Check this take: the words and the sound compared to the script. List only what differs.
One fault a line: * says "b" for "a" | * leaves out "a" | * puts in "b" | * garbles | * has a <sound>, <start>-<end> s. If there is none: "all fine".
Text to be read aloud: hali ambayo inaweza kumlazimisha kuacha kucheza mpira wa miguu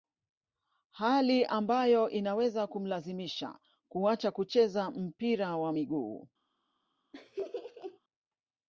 * has a laugh, 7.1-8.0 s